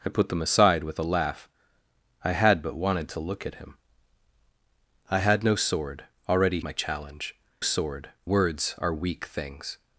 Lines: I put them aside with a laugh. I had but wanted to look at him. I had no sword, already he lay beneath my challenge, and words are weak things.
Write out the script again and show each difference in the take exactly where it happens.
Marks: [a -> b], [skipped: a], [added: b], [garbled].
I put them aside with a laugh. I had but wanted to look at him. I had no sword, already [skipped: he lay beneath] my challenge, [and -> sword] words are weak things.